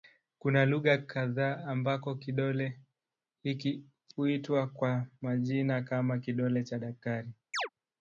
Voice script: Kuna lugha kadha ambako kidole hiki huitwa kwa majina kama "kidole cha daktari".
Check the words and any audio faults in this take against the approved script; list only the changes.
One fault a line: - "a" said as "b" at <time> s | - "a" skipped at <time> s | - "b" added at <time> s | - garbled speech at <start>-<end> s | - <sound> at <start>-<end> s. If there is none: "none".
- chirp at 7.5-7.7 s